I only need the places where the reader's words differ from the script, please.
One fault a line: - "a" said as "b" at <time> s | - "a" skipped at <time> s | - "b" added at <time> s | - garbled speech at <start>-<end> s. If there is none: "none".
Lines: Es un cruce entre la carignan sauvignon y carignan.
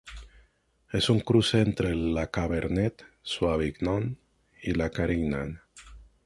- "carignan" said as "cabernet" at 2.3 s
- "la" added at 4.7 s